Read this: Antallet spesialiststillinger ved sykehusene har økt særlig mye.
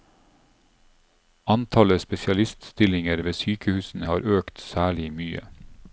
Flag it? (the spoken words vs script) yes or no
no